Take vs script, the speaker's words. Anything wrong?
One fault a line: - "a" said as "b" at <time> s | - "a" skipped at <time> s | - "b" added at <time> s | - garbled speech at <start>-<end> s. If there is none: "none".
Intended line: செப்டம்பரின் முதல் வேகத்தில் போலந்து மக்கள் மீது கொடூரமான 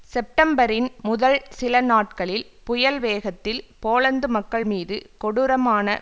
- "சில நாட்களில் புயல்" added at 1.5 s